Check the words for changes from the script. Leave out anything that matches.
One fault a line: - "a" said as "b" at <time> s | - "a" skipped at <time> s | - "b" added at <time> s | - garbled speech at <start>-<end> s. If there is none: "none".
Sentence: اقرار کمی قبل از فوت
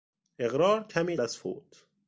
- "قبل" skipped at 1.2 s